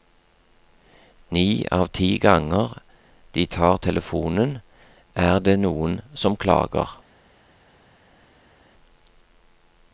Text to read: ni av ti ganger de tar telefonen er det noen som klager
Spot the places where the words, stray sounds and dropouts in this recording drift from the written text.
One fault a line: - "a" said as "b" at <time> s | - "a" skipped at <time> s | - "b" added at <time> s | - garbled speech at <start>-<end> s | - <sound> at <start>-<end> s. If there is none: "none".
none